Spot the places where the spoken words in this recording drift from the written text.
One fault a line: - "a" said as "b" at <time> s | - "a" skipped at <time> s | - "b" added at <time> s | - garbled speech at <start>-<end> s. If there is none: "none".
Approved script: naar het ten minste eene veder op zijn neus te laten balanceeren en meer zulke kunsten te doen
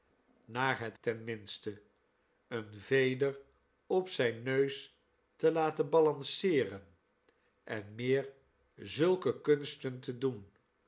none